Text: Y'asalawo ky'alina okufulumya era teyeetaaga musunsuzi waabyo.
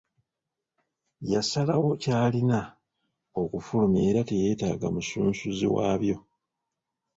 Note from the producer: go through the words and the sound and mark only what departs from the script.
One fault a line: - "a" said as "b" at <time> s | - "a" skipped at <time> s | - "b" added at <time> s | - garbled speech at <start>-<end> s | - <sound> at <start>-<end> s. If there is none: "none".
none